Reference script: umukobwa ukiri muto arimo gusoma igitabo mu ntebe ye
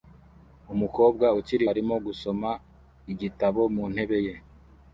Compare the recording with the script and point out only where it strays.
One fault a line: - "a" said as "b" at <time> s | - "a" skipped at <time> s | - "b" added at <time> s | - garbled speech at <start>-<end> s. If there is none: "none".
- "muto" skipped at 1.6 s